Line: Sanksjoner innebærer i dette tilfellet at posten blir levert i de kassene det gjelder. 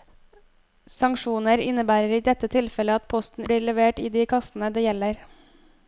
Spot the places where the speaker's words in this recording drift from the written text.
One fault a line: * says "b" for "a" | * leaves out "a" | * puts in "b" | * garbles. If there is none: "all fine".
all fine